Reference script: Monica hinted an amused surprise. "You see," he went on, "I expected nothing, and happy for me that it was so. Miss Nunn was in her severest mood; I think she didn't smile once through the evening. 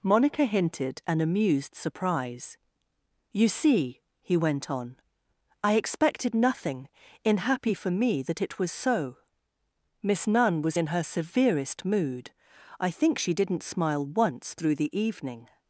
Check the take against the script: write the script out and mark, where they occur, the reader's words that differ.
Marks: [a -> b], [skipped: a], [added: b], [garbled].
Monica hinted an amused surprise. "You see," he went on, "I expected nothing, [and -> in] happy for me that it was so. Miss Nunn was in her severest mood; I think she didn't smile once through the evening.